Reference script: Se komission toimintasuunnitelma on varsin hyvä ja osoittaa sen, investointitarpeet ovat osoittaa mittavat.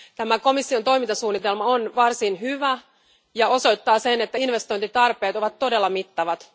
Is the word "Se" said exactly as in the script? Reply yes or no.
no